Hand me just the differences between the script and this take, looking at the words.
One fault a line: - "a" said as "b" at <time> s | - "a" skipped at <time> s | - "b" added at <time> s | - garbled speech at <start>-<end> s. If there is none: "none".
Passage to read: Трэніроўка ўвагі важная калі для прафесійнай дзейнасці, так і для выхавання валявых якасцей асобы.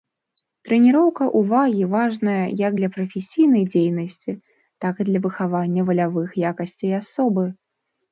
- "калі" said as "як" at 2.6 s